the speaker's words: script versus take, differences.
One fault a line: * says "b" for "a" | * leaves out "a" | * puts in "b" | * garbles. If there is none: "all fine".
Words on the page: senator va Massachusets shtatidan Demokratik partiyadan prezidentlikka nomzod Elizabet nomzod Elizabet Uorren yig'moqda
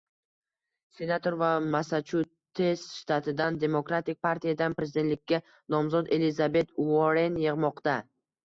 * leaves out "nomzod Elizabet"